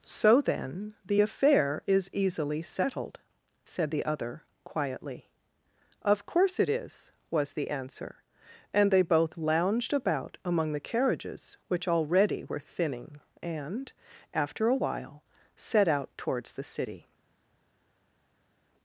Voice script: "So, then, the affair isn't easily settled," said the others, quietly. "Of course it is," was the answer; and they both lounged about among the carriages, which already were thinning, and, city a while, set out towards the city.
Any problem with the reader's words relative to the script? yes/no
yes